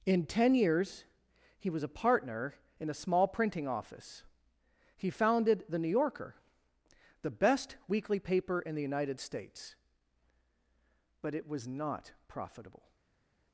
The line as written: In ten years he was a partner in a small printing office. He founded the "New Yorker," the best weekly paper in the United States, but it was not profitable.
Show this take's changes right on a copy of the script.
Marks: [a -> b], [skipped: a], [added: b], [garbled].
In ten years he was a partner in a small printing office. He founded the "New Yorker," the best weekly paper in the United States, but it was not profitable.